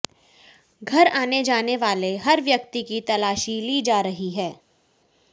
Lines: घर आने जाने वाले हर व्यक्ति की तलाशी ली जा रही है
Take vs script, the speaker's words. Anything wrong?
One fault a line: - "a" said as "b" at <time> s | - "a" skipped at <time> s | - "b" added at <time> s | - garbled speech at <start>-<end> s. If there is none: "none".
none